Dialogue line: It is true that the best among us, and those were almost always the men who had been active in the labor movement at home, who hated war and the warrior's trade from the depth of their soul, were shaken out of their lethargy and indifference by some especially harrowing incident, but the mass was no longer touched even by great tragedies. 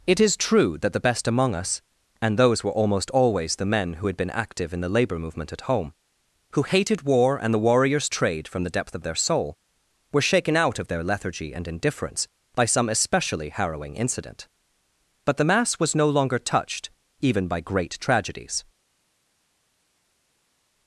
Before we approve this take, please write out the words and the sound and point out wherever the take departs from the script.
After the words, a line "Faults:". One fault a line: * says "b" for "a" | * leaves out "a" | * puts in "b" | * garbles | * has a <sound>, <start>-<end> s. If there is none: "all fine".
It is true that the best among us, and those were almost always the men who had been active in the labor movement at home, who hated war and the warrior's trade from the depth of their soul, were shaken out of their lethargy and indifference by some especially harrowing incident, but the mass was no longer touched even by great tragedies.
Faults:
all fine